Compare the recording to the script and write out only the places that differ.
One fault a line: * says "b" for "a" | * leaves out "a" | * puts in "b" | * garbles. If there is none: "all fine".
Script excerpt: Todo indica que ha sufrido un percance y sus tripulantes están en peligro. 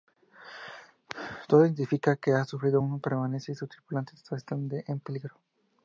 all fine